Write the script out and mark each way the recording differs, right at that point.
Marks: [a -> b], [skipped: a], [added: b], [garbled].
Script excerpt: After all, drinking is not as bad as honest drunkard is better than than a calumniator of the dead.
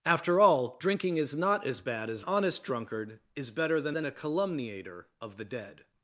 After all, drinking is not as bad as honest drunkard is better than than a calumniator of the dead.